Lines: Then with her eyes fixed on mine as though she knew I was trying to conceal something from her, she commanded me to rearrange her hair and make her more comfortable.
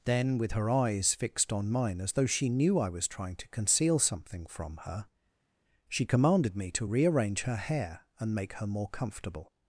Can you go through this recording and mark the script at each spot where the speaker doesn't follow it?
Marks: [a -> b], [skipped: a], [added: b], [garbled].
Then with her eyes fixed on mine as though she knew I was trying to conceal something from her, she commanded me to rearrange her hair and make her more comfortable.